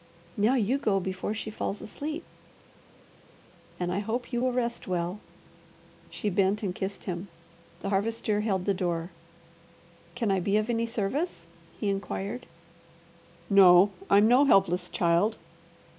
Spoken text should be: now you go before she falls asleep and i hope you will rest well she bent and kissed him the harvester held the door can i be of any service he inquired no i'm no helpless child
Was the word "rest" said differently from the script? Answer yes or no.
no